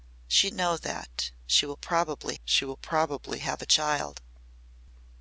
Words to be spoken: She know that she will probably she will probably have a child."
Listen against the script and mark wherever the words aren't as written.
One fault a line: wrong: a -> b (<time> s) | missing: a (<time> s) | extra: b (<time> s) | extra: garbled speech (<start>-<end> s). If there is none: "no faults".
no faults